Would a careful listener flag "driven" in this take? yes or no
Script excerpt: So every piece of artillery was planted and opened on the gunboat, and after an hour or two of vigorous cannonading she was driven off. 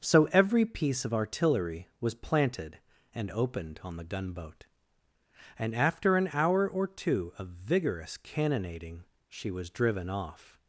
no